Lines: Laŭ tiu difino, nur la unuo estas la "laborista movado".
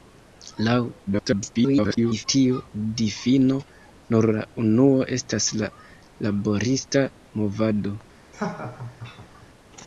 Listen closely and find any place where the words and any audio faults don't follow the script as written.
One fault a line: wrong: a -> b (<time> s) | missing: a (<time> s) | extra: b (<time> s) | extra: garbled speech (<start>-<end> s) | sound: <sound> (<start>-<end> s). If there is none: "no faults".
extra: garbled speech (1.1-2.2 s)
sound: laugh (8.3-9.5 s)